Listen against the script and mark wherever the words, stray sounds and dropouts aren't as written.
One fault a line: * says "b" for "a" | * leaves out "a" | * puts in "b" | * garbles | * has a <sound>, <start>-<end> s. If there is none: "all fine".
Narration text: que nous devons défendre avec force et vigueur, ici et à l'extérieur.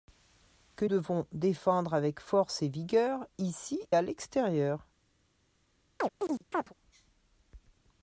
* leaves out "nous"
* leaves out "et"
* has a chirp, 6.0-6.7 s